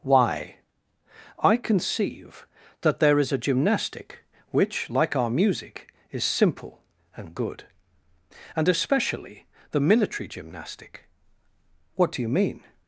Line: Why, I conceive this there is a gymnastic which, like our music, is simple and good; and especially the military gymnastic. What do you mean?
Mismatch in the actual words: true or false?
true